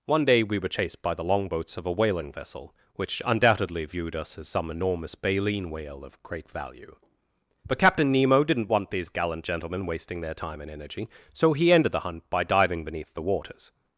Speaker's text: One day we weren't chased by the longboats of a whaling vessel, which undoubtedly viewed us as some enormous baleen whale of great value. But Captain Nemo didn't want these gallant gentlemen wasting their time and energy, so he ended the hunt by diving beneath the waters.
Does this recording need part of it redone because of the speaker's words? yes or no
yes